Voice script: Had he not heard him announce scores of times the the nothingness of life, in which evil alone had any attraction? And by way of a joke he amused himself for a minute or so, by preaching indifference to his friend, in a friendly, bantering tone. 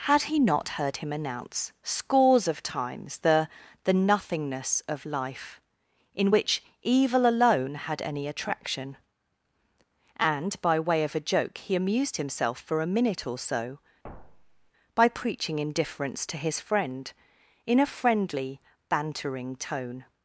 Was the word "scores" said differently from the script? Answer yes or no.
no